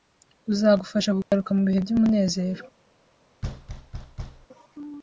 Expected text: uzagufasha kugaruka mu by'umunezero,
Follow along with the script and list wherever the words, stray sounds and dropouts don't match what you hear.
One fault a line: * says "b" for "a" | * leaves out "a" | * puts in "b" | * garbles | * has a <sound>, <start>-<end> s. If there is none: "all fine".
* has a dropout, 1.2-1.3 s
* puts in "bihe"
* has a thud, 3.4-4.5 s